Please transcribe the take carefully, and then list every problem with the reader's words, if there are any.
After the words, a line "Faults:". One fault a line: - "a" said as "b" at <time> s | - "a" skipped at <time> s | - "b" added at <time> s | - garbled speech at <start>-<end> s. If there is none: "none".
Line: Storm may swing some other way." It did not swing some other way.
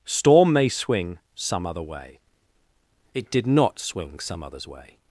Storm may swing some other way." It did not swing some others way.
Faults:
- "other" said as "others" at 4.4 s